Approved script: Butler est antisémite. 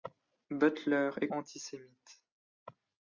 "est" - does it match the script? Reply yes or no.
yes